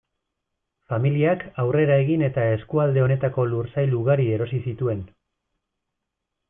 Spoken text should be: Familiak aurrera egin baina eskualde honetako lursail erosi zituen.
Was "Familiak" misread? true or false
false